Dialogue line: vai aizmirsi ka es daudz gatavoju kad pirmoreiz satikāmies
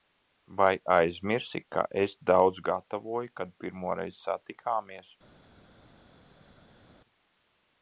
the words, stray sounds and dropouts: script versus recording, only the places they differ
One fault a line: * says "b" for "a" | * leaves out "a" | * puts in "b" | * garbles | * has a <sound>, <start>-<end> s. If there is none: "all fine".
all fine